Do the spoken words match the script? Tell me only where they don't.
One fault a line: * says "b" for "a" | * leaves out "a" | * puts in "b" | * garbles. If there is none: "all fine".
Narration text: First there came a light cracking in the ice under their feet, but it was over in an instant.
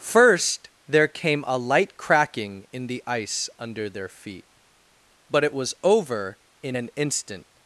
all fine